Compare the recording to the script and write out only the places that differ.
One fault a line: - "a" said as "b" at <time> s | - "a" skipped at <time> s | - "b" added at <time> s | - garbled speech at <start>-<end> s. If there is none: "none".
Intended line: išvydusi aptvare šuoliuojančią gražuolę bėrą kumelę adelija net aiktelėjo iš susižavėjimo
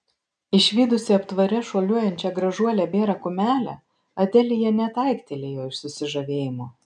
none